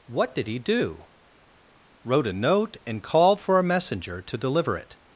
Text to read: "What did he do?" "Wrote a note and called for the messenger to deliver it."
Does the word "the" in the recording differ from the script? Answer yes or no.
yes